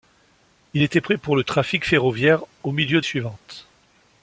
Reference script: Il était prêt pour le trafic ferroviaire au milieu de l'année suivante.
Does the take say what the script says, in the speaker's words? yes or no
no